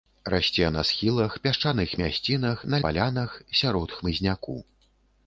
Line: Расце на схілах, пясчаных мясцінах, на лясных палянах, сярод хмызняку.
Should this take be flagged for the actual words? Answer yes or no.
yes